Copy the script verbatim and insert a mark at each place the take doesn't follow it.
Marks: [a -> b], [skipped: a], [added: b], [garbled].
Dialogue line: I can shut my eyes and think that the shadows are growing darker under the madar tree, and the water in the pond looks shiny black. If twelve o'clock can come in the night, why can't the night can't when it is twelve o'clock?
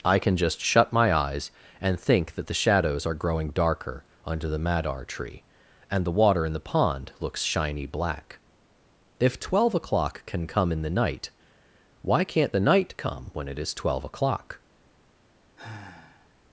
I can [added: just] shut my eyes and think that the shadows are growing darker under the madar tree, and the water in the pond looks shiny black. If twelve o'clock can come in the night, why can't the night [can't -> come] when it is twelve o'clock?